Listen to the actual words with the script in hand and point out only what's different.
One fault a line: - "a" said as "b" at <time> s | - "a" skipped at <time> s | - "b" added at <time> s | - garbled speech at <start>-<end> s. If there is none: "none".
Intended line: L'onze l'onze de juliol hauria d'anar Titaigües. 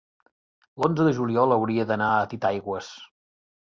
- "l'onze" skipped at 1.1 s
- "a" added at 2.1 s